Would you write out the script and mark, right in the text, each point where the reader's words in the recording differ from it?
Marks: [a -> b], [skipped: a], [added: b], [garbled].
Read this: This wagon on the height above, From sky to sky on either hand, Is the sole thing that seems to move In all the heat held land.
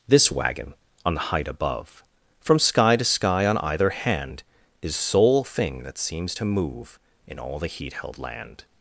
This wagon on the height above, From sky to sky on either hand, Is [skipped: the] sole thing that seems to move In all the heat held land.